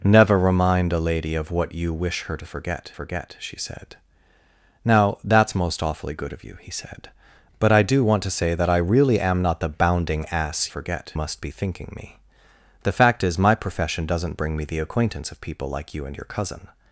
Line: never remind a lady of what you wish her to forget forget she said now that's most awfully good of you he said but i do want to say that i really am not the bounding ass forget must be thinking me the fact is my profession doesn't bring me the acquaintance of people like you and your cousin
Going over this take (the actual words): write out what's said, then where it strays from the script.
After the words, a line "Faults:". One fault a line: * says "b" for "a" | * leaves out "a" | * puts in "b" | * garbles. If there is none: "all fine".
never remind a lady of what you wish her to forget forget she said now that's most awfully good of you he said but i do want to say that i really am not the bounding ass forget must be thinking me the fact is my profession doesn't bring me the acquaintance of people like you and your cousin
Faults:
all fine